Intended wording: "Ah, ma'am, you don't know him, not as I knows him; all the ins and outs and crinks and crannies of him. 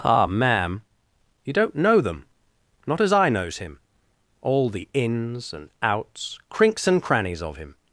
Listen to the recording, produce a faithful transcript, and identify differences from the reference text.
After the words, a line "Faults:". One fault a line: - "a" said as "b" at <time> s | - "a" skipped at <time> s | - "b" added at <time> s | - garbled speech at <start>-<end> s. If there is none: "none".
"Ah, ma'am, you don't know them, not as I knows him; all the ins and outs crinks and crannies of him.
Faults:
- "him" said as "them" at 2.0 s
- "and" skipped at 6.4 s